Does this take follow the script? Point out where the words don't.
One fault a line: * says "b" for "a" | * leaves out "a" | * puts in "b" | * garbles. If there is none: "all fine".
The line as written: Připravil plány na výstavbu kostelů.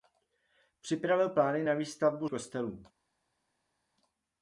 all fine